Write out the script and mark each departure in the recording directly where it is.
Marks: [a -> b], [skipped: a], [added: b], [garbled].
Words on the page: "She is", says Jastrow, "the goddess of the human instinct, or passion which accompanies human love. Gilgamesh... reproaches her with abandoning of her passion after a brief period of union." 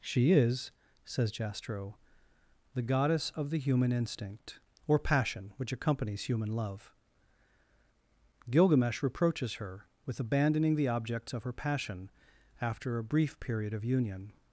"She is", says Jastrow, "the goddess of the human instinct, or passion which accompanies human love. Gilgamesh... reproaches her with abandoning [added: the objects] of her passion after a brief period of union."